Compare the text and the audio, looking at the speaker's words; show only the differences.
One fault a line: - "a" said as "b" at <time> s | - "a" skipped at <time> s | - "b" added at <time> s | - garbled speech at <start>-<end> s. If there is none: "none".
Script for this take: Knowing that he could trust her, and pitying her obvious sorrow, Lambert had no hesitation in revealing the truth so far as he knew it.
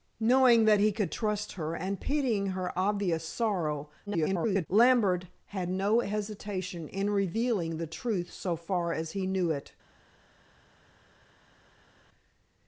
- garbled speech at 4.1-4.7 s